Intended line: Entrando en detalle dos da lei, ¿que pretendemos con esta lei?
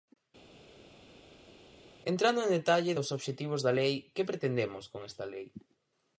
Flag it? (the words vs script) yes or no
yes